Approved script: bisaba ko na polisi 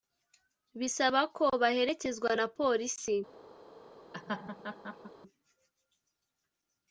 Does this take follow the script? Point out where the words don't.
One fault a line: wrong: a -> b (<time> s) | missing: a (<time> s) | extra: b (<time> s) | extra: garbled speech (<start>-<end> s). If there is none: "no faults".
extra: baherekezwa (1.6 s)